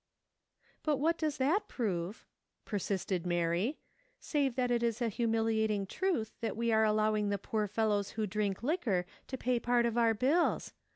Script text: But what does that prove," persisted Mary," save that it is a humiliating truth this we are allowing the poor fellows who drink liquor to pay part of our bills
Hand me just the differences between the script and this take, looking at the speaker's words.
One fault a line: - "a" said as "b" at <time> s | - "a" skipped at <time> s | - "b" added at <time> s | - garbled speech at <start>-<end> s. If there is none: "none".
- "this" said as "that" at 6.4 s